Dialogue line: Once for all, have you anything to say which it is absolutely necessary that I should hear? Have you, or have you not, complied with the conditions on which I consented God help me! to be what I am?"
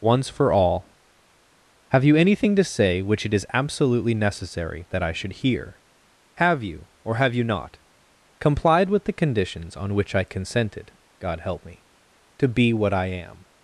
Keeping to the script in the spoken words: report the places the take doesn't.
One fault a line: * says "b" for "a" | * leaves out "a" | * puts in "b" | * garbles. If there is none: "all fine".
all fine